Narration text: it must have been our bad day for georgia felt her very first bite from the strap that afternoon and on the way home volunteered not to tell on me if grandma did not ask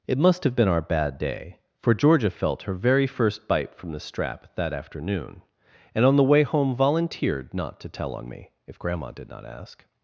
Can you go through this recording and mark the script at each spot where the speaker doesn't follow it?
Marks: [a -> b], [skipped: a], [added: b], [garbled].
it must have been our bad day for georgia felt her very first bite from the strap that afternoon and on the way home volunteered not to tell on me if grandma did not ask